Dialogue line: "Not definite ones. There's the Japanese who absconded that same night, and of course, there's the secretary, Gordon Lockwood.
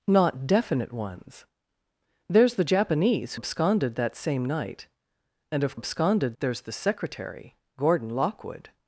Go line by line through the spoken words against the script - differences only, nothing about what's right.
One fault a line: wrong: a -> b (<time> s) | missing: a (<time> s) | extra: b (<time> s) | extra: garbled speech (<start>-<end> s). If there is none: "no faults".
missing: who (3.4 s)
wrong: course -> absconded (5.7 s)